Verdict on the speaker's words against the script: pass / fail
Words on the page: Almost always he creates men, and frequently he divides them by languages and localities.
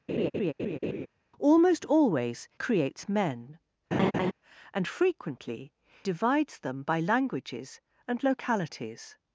fail